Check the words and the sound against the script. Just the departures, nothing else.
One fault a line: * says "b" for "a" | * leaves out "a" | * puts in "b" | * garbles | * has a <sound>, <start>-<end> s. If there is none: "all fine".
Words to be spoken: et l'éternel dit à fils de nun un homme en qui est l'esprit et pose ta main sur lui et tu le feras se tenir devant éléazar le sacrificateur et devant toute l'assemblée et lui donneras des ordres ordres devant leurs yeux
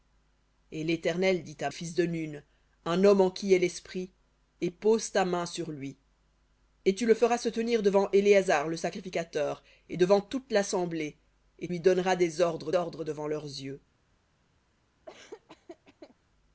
* has a laugh, 15.1-16.2 s